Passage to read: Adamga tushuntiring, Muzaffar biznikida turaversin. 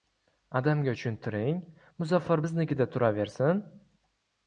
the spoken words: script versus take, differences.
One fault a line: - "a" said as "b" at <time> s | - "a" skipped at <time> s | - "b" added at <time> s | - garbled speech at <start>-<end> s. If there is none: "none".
none